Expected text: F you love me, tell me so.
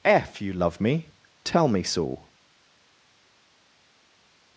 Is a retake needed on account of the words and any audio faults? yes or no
no